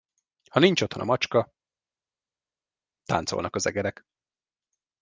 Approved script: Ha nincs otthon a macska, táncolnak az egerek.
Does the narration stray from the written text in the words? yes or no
no